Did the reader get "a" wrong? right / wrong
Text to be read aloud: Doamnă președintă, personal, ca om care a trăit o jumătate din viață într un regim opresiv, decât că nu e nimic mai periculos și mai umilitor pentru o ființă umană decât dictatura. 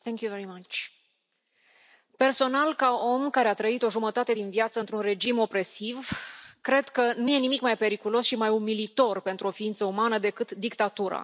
right